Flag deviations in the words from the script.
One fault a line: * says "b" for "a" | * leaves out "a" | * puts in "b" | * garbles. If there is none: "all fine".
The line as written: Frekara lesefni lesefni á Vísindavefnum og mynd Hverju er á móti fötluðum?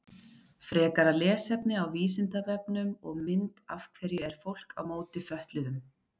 * leaves out "lesefni"
* puts in "Af"
* puts in "fólk"